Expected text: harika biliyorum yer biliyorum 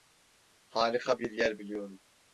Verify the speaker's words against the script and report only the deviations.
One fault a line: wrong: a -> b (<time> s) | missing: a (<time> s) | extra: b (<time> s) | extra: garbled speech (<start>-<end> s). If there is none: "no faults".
wrong: biliyorum -> bir (1.2 s)